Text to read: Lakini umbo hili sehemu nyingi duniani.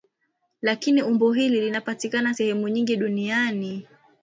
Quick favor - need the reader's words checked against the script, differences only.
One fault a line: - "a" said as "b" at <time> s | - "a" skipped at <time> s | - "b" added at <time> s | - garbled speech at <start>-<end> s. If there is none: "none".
- "linapatikana" added at 1.6 s